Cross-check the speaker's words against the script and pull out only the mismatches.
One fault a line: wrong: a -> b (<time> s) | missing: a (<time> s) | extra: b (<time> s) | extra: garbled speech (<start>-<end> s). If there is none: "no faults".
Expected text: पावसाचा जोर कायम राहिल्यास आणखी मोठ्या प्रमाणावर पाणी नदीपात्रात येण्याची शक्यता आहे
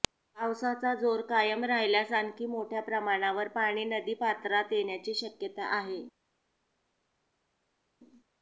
no faults